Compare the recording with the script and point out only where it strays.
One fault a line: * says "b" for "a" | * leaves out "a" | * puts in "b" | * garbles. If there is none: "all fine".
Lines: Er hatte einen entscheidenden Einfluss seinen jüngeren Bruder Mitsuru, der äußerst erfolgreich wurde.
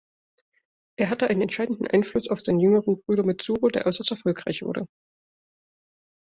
* puts in "auf"